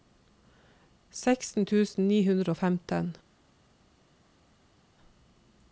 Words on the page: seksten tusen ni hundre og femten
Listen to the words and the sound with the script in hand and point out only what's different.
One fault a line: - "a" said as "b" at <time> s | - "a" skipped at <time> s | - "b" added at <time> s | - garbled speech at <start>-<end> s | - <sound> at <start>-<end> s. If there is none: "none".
none